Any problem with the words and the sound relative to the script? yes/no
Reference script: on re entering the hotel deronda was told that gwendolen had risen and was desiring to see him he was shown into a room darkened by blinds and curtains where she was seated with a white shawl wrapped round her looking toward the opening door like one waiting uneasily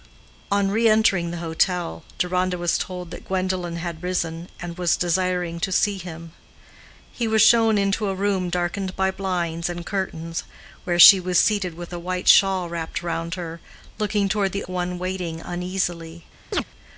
yes